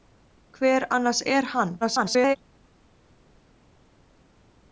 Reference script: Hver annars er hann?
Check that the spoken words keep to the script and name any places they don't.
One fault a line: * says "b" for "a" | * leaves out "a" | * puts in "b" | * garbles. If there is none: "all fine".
* garbles